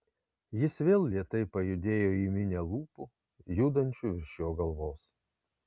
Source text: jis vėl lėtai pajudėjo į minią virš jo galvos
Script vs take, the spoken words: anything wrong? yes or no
yes